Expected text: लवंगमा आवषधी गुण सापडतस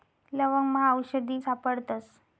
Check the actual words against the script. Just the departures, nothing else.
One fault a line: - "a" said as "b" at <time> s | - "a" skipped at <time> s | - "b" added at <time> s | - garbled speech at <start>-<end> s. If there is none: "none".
- "गुण" skipped at 1.4 s